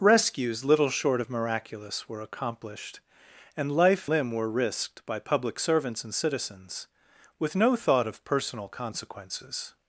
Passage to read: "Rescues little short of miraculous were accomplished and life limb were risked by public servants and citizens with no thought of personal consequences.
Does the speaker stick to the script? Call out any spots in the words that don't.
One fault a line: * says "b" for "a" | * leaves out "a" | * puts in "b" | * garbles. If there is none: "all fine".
all fine